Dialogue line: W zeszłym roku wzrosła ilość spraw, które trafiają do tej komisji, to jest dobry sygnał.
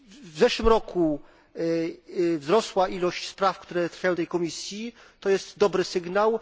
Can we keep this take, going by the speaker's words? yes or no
yes